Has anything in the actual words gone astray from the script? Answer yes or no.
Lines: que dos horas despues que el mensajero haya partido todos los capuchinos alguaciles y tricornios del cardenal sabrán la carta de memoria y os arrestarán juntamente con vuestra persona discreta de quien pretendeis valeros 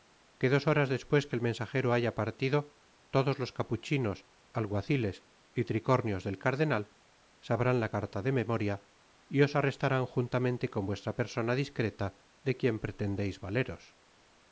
no